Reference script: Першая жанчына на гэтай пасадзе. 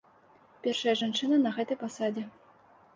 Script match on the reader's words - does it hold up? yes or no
yes